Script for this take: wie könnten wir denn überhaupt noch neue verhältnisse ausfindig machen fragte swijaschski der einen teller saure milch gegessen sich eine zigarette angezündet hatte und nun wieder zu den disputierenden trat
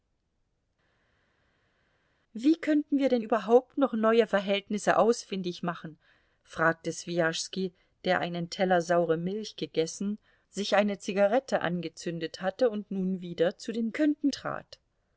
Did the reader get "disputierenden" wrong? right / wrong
wrong